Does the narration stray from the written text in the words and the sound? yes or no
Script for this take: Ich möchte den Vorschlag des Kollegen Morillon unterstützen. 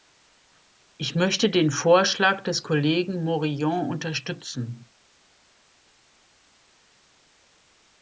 no